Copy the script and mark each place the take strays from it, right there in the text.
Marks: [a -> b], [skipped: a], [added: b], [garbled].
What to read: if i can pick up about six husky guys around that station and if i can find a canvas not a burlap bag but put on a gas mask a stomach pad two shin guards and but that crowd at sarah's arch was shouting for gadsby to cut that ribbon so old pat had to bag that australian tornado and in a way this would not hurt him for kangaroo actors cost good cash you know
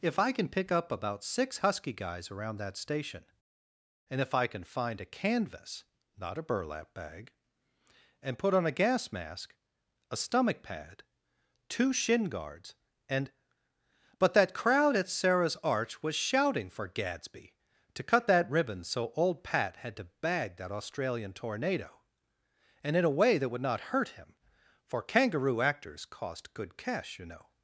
if i can pick up about six husky guys around that station and if i can find a canvas not a burlap bag [but -> and] put on a gas mask a stomach pad two shin guards and but that crowd at sarah's arch was shouting for gadsby to cut that ribbon so old pat had to bag that australian tornado and in a way [this -> that] would not hurt him for kangaroo actors cost good cash you know